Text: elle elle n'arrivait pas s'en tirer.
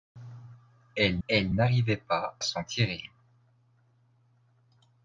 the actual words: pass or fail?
pass